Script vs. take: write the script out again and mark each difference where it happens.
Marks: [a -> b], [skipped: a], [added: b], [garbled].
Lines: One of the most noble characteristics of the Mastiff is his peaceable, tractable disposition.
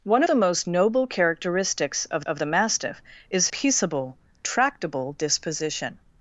One [skipped: of] the most noble characteristics of [added: of] the Mastiff is [skipped: his] peaceable, tractable disposition.